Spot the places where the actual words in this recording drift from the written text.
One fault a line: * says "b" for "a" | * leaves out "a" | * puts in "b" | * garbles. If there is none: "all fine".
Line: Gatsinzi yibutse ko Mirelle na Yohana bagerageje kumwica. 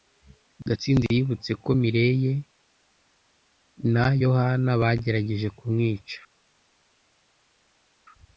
all fine